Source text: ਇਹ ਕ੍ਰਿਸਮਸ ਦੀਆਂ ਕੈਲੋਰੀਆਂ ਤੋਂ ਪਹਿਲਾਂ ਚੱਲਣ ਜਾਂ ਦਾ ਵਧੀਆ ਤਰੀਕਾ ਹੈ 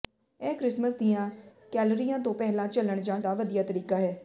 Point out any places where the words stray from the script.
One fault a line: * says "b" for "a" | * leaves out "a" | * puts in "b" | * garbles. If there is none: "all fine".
all fine